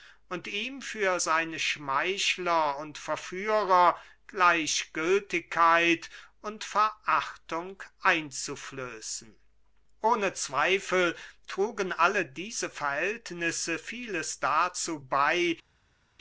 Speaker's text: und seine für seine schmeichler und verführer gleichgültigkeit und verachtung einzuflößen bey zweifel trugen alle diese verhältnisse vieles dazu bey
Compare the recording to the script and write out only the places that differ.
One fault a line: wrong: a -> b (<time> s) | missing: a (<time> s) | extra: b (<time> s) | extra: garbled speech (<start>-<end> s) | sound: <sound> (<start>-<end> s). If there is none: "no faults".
wrong: seine -> ihm (0.5 s)
wrong: bey -> ohne (10.0 s)